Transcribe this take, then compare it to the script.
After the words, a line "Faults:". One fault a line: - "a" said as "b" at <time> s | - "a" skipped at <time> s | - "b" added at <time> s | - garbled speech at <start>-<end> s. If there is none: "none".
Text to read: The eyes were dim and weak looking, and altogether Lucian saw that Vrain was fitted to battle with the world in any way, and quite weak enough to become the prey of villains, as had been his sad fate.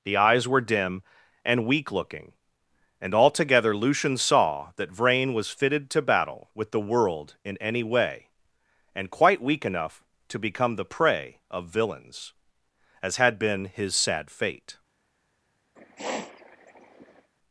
The eyes were dim and weak looking, and altogether Lucian saw that Vrain was fitted to battle with the world in any way, and quite weak enough to become the prey of villains, as had been his sad fate.
Faults:
none